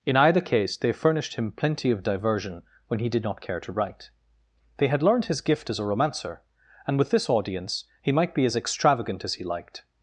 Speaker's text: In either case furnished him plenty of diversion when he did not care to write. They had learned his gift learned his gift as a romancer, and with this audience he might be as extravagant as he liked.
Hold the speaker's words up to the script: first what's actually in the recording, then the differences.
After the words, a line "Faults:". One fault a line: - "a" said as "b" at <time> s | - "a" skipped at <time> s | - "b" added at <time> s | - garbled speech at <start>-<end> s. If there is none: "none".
In either case they furnished him plenty of diversion when he did not care to write. They had learned his gift as a romancer, and with this audience he might be as extravagant as he liked.
Faults:
- "they" added at 0.8 s
- "learned his gift" skipped at 5.7 s